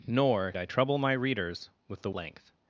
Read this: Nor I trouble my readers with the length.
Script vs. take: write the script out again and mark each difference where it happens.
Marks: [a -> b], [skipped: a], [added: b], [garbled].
Nor I trouble my readers with the length.